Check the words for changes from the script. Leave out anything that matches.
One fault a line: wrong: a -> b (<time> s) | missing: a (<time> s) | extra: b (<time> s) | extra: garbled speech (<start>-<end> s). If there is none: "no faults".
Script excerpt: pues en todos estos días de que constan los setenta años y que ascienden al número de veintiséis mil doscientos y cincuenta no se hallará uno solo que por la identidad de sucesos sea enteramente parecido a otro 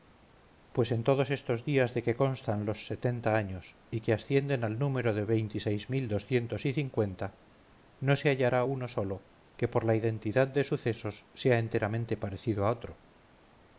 no faults